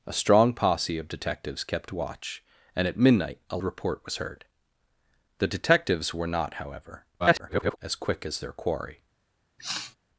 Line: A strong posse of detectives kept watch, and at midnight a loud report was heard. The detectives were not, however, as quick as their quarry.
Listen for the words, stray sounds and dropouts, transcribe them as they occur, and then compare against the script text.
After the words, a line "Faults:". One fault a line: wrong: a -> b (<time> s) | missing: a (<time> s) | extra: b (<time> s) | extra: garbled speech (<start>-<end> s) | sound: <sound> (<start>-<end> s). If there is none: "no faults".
A strong posse of detectives kept watch, and at midnight a report was heard. The detectives were not, however, [garbled] as quick as their quarry.
Faults:
missing: loud (3.6 s)
extra: garbled speech (7.2-7.8 s)
sound: sniff (9.6-10.0 s)